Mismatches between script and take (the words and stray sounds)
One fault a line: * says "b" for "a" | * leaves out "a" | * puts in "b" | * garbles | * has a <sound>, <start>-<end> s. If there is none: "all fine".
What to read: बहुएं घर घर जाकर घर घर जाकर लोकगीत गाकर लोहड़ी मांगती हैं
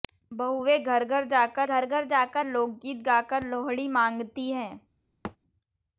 * has a thud, 5.2-5.4 s